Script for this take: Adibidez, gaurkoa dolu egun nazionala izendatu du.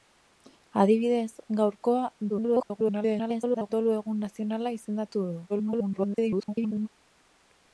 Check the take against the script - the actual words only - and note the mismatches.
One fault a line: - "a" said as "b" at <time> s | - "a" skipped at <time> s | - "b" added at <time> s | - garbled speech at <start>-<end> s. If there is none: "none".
- garbled speech at 2.3-3.7 s
- garbled speech at 5.5-6.9 s